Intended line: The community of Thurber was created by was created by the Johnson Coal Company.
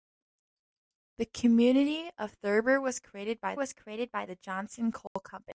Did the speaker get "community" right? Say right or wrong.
right